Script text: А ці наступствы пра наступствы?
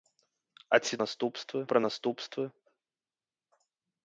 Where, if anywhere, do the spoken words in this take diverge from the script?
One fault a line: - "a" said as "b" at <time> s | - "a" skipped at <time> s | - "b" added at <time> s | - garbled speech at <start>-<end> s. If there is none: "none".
none